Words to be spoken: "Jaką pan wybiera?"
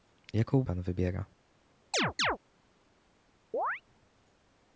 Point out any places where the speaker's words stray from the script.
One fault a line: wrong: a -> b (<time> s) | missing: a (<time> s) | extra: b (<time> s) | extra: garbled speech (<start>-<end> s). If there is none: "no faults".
no faults